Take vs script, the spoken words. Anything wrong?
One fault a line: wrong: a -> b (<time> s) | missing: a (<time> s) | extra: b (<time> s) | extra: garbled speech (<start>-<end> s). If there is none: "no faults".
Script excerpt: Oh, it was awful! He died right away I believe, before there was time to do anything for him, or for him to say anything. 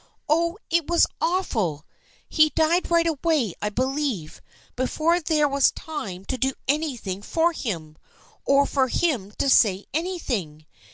no faults